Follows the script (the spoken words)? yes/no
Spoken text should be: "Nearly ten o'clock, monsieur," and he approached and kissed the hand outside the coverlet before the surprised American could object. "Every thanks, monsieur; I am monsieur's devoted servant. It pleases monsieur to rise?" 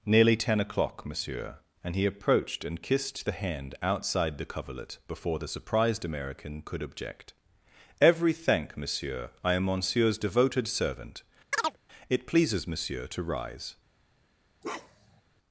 no